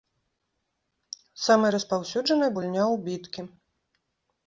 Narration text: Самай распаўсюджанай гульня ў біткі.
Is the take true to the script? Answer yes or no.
yes